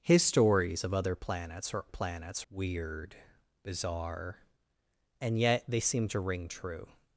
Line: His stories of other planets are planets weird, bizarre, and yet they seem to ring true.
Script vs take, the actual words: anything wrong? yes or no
no